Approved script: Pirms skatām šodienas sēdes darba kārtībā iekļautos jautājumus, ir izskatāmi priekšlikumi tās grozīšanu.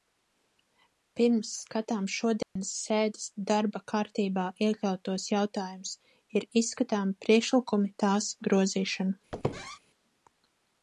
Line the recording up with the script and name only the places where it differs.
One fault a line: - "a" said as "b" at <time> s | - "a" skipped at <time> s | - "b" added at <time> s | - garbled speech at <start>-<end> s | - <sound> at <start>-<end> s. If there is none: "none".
- dropout at 2.4-2.6 s
- squeak at 9.3-9.8 s